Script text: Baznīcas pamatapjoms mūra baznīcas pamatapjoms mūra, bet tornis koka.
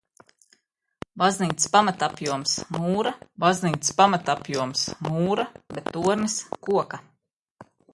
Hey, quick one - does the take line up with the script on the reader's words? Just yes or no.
yes